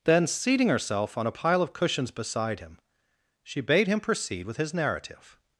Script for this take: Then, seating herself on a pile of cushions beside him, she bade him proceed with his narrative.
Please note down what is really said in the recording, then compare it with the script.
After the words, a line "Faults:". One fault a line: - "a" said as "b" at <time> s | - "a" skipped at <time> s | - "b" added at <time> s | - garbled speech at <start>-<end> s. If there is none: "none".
Then, seating herself on a pile of cushions beside him, she bade him proceed with his narrative.
Faults:
none